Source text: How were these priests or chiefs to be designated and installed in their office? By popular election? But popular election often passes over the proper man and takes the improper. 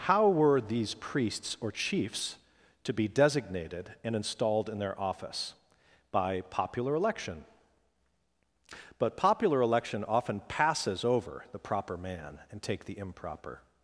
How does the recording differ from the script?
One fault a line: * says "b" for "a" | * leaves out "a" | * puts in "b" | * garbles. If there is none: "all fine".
* says "take" for "takes"